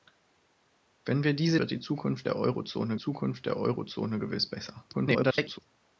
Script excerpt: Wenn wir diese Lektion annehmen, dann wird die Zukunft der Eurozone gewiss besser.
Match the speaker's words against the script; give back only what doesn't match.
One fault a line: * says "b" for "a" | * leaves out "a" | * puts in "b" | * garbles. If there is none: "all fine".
* says "Wird die Zukunft der Eurozone" for "Lektion annehmen dann wird die"
* garbles